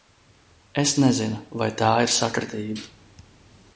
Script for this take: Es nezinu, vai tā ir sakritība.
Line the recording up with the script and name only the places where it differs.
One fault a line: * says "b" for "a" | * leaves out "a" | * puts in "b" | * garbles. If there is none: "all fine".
all fine